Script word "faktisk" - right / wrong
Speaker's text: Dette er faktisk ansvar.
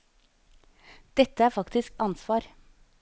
right